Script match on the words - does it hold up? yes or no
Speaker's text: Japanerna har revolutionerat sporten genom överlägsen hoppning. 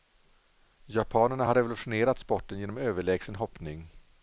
yes